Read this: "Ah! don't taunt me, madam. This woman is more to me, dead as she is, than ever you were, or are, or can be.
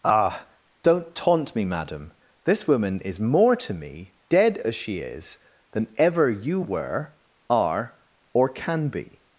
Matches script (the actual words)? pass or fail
fail